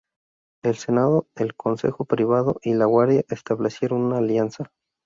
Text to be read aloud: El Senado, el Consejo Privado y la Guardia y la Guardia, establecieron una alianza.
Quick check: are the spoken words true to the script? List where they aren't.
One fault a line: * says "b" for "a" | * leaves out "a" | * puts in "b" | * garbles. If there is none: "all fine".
* leaves out "y la Guardia"